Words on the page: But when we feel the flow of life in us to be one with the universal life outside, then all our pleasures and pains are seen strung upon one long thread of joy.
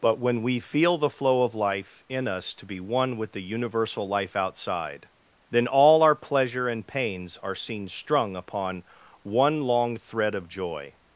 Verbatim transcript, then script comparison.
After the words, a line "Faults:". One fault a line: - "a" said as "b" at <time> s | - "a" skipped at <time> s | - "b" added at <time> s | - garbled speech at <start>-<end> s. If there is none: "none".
But when we feel the flow of life in us to be one with the universal life outside, then all our pleasure and pains are seen strung upon one long thread of joy.
Faults:
- "pleasures" said as "pleasure" at 6.2 s